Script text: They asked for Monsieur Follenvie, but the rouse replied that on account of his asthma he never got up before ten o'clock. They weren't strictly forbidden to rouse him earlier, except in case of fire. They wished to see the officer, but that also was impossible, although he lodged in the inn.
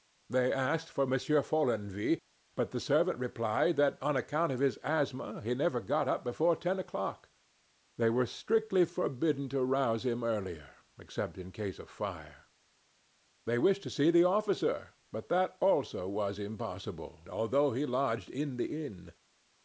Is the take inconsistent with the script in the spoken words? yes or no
yes